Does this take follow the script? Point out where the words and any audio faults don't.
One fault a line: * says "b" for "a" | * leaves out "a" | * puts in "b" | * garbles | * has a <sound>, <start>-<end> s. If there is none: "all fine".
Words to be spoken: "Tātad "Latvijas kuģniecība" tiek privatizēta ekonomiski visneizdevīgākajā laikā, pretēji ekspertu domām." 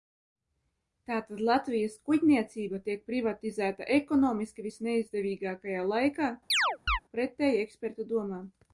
* has a chirp, 6.5-7.0 s